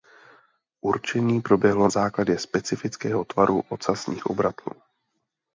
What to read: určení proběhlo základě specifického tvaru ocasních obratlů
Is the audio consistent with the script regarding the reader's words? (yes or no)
yes